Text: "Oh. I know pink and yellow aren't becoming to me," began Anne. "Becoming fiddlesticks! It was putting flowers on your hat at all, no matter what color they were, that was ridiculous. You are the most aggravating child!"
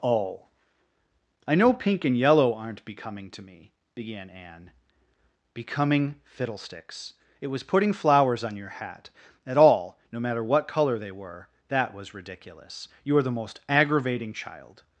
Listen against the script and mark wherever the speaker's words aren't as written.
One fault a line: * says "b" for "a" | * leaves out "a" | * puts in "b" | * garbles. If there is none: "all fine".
all fine